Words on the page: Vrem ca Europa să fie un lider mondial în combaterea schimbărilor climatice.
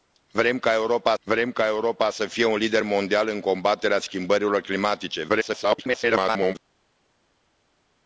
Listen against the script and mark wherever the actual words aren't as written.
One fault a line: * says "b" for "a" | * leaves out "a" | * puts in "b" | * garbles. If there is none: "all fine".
* puts in "vrem ca Europa"
* garbles